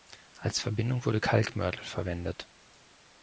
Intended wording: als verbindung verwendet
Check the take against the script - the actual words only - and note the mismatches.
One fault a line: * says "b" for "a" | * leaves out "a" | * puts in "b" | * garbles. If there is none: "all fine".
* puts in "wurde kalkmörtel"